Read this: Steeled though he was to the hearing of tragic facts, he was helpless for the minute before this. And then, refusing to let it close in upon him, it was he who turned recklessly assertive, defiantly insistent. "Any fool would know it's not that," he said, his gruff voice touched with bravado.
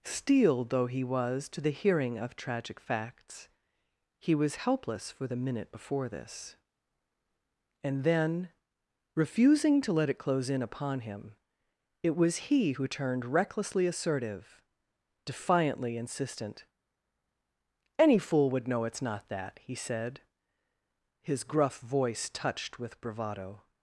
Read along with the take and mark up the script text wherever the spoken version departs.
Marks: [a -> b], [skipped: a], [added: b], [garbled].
Steeled though he was to the hearing of tragic facts, he was helpless for the minute before this. And then, refusing to let it close in upon him, it was he who turned recklessly assertive, defiantly insistent. "Any fool would know it's not that," he said, his gruff voice touched with bravado.